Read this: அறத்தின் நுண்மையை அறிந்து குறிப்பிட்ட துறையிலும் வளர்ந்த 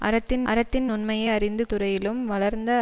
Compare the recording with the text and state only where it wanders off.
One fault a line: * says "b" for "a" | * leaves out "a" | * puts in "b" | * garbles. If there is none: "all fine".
* puts in "அறத்தின்"
* leaves out "குறிப்பிட்ட"